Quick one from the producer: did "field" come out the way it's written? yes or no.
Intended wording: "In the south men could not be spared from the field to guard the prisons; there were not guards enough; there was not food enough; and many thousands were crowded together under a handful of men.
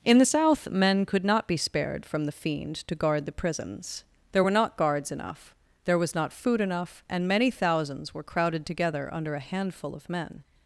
no